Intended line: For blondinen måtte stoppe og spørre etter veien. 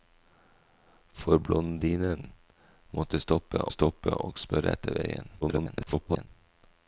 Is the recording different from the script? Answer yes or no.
yes